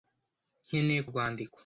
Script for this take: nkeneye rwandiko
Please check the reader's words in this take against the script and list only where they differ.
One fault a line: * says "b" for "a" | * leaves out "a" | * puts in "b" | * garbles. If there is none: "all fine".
all fine